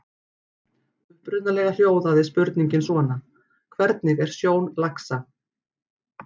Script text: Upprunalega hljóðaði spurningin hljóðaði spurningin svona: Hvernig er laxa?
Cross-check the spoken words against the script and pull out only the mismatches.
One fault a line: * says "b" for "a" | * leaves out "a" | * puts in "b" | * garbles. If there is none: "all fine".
* leaves out "hljóðaði spurningin"
* puts in "sjón"